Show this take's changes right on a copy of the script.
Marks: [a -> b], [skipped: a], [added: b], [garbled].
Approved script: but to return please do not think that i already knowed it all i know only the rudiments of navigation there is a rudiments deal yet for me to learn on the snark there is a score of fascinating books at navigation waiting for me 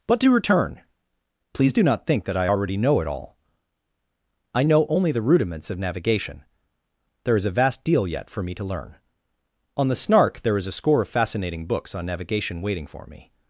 but to return please do not think that i already [knowed -> know] it all i know only the rudiments of navigation there is a [rudiments -> vast] deal yet for me to learn on the snark there is a score of fascinating books [at -> on] navigation waiting for me